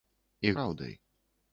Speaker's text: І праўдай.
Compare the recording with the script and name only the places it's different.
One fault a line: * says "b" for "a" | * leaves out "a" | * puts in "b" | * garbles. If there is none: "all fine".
all fine